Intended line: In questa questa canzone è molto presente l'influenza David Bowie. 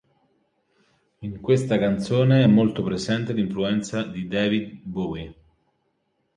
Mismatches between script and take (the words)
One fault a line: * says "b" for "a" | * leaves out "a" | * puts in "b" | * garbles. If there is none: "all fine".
* leaves out "questa"
* puts in "di"